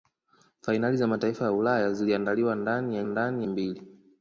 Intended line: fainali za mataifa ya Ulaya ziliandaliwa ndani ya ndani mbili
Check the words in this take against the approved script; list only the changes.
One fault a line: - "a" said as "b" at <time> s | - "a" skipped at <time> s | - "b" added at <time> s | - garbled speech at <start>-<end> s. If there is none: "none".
none